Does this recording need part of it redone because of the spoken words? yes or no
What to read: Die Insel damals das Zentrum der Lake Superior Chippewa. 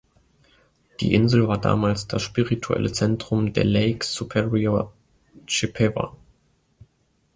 yes